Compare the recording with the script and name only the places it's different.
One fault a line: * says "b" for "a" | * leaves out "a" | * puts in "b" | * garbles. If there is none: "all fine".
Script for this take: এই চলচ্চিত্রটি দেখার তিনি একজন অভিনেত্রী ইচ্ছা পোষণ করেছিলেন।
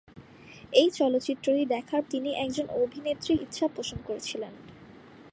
all fine